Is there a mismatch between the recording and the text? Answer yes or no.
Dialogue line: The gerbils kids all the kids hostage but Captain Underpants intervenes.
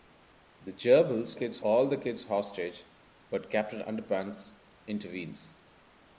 no